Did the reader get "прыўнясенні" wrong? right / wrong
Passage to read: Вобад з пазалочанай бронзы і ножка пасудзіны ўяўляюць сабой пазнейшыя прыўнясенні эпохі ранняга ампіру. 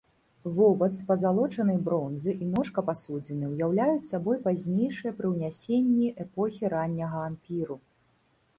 right